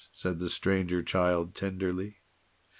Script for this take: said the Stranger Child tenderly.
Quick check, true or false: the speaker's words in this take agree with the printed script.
true